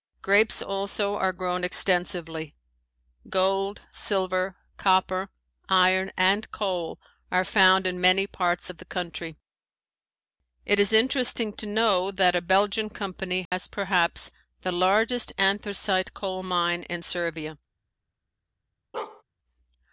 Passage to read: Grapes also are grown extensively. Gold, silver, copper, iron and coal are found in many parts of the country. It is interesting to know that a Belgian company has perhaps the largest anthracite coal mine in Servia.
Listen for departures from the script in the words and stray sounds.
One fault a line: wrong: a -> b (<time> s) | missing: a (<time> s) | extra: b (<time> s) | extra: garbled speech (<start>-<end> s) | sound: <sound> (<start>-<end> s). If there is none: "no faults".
sound: dropout (13.5-13.5 s)
sound: bark (18.9-19.2 s)